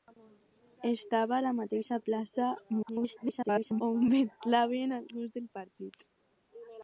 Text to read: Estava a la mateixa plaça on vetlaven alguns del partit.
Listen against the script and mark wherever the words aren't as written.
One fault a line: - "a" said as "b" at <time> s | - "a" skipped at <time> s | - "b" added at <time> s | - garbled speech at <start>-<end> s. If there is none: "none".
- garbled speech at 2.7-3.8 s